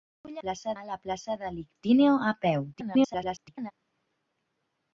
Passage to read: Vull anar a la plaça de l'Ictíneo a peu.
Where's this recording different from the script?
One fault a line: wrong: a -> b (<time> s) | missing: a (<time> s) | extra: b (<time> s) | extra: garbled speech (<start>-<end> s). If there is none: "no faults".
wrong: anar -> plaça (0.4 s)
extra: garbled speech (2.7-3.7 s)